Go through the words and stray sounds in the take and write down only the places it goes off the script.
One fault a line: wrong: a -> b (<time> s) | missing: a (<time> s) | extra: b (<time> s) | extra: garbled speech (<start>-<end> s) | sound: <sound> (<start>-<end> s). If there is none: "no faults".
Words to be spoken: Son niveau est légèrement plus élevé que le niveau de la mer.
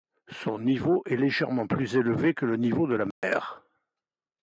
sound: dropout (3.1-3.2 s)